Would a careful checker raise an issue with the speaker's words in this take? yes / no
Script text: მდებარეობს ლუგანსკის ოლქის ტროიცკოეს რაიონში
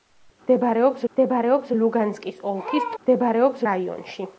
yes